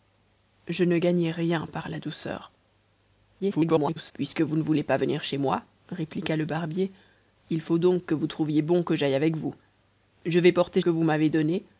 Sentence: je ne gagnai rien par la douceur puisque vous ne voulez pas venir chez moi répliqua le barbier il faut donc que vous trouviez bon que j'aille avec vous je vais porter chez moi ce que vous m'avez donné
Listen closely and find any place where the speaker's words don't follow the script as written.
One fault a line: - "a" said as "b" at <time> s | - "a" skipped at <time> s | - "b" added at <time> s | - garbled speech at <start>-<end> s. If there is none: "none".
- garbled speech at 3.4-4.1 s
- "chez moi ce" skipped at 10.8 s